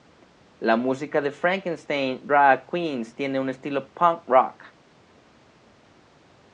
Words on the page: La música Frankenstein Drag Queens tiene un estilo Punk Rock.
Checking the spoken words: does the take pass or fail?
fail